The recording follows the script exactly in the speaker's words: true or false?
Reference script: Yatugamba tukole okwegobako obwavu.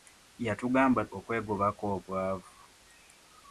false